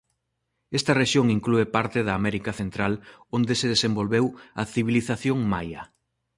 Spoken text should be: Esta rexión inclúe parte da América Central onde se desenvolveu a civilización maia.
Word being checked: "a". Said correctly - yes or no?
yes